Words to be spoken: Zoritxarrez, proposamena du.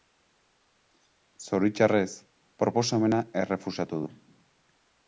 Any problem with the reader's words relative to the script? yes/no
yes